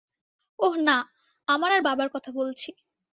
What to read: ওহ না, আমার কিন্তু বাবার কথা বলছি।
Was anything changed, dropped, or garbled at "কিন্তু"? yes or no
yes